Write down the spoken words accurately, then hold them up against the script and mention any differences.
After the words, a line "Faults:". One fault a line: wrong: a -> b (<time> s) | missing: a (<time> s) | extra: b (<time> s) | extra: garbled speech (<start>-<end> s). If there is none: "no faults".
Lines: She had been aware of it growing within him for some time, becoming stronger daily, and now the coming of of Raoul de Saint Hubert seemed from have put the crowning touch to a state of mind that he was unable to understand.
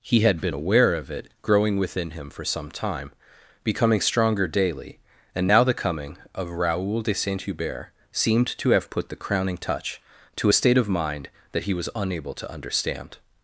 He had been aware of it growing within him for some time, becoming stronger daily, and now the coming of Raoul de Saint Hubert seemed to have put the crowning touch to a state of mind that he was unable to understand.
Faults:
wrong: She -> He (0.0 s)
missing: of (6.5 s)
wrong: from -> to (8.6 s)